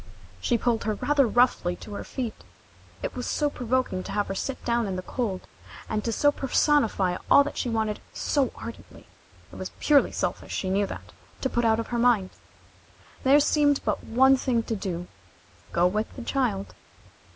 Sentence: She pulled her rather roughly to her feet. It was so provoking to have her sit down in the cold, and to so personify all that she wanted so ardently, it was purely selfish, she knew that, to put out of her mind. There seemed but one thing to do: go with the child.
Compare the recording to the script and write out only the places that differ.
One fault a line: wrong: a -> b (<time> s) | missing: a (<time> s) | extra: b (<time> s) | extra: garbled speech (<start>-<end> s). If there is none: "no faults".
no faults